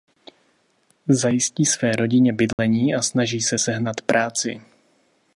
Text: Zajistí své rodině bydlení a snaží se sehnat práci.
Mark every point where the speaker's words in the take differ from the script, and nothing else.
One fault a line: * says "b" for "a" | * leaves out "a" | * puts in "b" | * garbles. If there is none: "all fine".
all fine